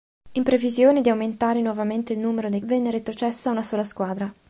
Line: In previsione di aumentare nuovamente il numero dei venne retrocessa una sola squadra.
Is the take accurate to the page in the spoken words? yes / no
yes